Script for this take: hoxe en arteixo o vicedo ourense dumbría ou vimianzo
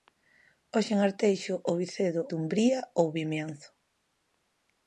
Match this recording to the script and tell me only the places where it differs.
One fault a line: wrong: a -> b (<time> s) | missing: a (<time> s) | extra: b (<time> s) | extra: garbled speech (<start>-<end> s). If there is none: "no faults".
missing: ourense (2.2 s)